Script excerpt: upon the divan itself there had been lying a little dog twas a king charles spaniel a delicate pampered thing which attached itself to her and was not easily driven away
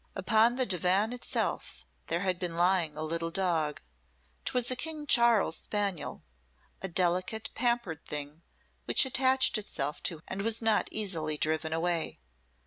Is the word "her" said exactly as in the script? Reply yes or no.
no